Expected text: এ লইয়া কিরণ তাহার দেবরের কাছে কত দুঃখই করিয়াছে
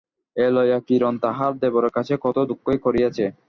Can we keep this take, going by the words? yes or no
yes